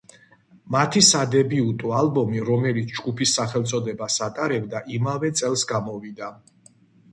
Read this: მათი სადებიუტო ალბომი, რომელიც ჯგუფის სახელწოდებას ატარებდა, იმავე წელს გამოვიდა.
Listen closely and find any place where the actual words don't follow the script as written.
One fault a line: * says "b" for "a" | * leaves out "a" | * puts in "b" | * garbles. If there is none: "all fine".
all fine